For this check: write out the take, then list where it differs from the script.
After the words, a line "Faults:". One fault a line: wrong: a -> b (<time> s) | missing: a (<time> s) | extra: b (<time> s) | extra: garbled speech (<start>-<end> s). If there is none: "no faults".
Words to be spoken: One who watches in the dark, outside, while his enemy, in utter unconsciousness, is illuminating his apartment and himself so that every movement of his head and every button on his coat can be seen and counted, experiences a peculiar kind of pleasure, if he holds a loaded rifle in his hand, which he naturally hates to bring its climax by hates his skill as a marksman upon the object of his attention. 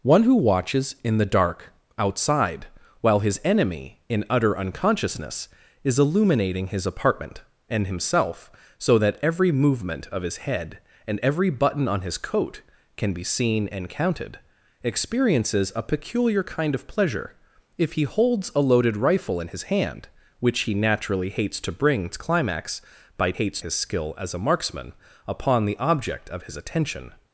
One who watches in the dark, outside, while his enemy, in utter unconsciousness, is illuminating his apartment and himself so that every movement of his head and every button on his coat can be seen and counted, experiences a peculiar kind of pleasure, if he holds a loaded rifle in his hand, which he naturally hates to bring its climax by hates his skill as a marksman upon the object of his attention.
Faults:
no faults